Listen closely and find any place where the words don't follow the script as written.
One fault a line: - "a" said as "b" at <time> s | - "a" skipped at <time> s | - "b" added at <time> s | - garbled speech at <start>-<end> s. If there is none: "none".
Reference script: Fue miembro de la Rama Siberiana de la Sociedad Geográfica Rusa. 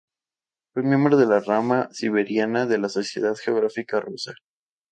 none